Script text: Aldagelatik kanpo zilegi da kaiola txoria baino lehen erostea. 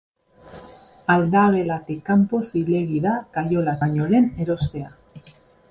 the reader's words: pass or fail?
fail